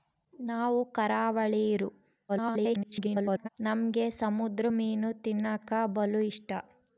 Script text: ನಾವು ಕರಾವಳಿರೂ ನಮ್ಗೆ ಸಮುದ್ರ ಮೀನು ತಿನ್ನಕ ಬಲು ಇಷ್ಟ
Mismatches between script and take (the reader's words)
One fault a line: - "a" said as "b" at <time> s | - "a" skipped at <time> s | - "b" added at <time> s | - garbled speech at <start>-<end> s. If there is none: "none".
- garbled speech at 2.3-3.5 s